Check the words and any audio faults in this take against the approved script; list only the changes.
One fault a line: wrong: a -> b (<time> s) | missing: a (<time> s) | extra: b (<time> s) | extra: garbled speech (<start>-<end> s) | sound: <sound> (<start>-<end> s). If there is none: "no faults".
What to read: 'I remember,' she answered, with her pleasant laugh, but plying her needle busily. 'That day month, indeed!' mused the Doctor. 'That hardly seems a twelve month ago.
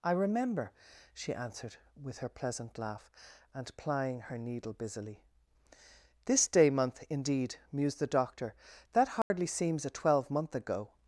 wrong: but -> and (3.5 s)
wrong: That -> This (6.2 s)
sound: dropout (9.2-9.3 s)